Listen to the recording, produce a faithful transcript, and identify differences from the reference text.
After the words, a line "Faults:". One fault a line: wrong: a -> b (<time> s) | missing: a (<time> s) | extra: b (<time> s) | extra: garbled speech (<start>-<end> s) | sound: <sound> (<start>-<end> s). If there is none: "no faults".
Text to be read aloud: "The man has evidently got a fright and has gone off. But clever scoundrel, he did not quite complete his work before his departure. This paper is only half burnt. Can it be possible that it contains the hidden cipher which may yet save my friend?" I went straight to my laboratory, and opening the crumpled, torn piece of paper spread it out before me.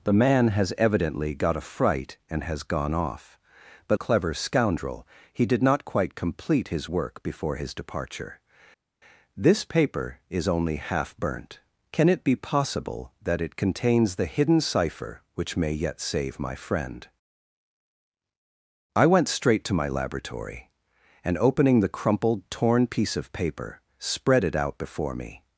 "The man has evidently got a fright and has gone off. But clever scoundrel, he did not quite complete his work before his departure. This paper is only half burnt. Can it be possible that it contains the hidden cipher which may yet save my friend?" I went straight to my laboratory, and opening the crumpled, torn piece of paper spread it out before me.
Faults:
no faults